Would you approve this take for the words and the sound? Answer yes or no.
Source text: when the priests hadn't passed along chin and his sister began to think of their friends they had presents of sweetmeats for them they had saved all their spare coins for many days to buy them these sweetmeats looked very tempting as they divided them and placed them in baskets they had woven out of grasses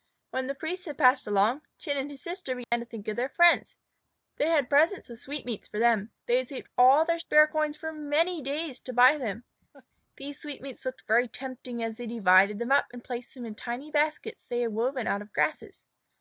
no